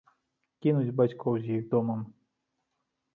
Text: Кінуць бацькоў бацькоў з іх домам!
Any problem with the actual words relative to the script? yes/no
yes